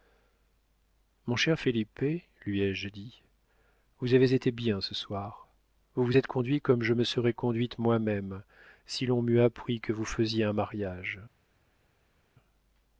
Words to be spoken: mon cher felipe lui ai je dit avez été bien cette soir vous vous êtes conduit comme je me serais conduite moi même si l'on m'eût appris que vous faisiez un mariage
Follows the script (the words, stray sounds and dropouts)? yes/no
no